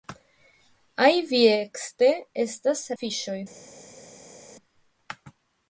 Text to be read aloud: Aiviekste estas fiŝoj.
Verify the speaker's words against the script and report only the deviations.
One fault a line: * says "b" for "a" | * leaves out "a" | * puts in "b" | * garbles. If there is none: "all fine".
all fine